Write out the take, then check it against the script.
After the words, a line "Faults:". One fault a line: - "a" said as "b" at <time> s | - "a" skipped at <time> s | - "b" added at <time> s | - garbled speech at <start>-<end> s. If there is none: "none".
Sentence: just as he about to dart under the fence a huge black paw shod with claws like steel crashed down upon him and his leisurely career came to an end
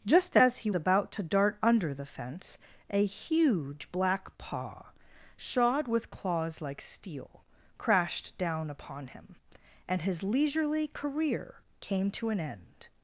just as he about to dart under the fence a huge black paw shod with claws like steel crashed down upon him and his leisurely career came to an end
Faults:
none